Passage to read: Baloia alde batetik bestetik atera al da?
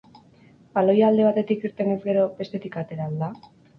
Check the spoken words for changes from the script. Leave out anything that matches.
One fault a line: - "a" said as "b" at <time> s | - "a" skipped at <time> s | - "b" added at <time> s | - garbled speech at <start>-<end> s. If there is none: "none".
- "irtenez gero" added at 1.7 s